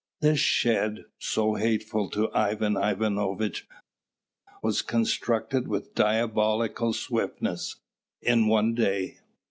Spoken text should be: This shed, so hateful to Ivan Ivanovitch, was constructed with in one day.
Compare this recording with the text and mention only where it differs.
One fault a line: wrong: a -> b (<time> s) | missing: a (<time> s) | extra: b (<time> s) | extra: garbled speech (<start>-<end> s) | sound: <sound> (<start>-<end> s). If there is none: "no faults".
extra: diabolical swiftness (5.9 s)